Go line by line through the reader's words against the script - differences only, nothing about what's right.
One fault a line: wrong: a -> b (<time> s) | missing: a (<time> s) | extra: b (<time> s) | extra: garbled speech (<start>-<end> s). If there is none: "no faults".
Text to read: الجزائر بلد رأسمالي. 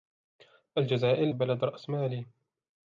no faults